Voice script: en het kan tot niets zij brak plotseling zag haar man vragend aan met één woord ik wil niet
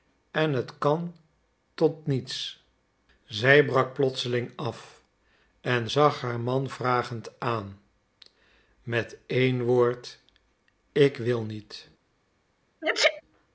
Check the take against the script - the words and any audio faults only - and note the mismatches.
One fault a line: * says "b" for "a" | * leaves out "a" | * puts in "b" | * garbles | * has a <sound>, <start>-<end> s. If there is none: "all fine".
* puts in "af en"
* has a sneeze, 12.8-13.2 s